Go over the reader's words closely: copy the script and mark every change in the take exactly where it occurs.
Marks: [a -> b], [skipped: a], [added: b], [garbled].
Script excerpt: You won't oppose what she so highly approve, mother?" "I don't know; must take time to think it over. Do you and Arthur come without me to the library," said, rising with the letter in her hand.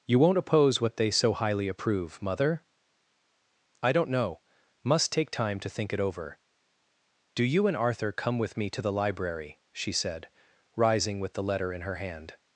You won't oppose what [she -> they] so highly approve, mother?" "I don't know; must take time to think it over. Do you and Arthur come [without -> with] me to the library," [added: she] said, rising with the letter in her hand.